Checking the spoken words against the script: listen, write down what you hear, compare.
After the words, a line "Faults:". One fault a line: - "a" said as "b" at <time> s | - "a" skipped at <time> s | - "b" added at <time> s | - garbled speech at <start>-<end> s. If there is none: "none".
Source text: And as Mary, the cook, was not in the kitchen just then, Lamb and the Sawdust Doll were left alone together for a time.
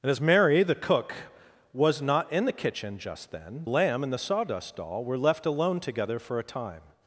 And as Mary, the cook, was not in the kitchen just then, Lamb and the Sawdust Doll were left alone together for a time.
Faults:
none